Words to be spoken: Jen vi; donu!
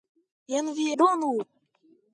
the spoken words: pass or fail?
pass